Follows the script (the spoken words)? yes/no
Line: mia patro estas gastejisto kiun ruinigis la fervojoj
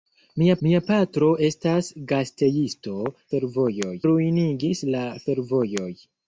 no